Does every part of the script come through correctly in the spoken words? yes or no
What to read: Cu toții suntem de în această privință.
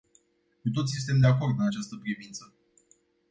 no